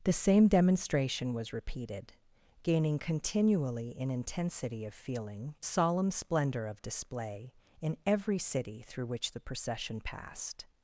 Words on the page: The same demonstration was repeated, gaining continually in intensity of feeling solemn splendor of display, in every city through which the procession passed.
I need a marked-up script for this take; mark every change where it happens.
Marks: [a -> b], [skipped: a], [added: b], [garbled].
The same demonstration was repeated, gaining continually in intensity of feeling solemn splendor of display, in every city through which the procession passed.